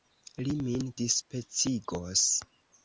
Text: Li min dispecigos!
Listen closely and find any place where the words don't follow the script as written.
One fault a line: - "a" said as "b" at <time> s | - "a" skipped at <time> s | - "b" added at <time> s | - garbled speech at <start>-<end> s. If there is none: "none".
none